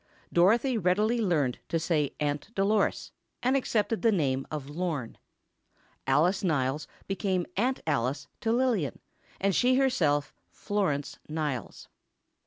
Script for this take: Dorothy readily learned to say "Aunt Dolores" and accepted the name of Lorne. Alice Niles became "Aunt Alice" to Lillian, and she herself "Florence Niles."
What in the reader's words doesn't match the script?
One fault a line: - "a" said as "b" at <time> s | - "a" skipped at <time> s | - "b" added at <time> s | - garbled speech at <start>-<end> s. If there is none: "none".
none